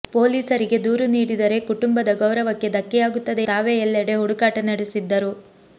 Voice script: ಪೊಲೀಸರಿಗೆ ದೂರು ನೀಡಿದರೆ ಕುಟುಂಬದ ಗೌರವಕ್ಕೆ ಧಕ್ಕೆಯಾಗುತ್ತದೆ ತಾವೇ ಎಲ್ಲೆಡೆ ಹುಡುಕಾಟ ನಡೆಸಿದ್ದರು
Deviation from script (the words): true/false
false